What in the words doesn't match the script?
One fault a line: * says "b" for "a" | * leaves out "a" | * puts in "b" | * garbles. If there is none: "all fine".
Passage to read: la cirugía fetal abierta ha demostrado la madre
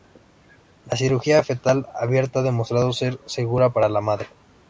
* puts in "ser segura para"